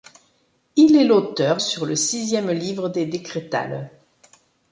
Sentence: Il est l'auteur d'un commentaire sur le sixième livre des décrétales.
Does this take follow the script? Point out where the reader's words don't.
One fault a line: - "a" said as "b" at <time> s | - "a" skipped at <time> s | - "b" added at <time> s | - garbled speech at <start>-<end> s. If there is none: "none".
- "d'un commentaire" skipped at 1.6 s